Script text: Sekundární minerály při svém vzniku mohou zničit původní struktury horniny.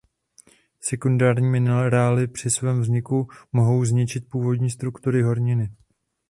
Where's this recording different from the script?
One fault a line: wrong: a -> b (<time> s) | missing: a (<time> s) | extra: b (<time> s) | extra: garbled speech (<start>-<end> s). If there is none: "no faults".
no faults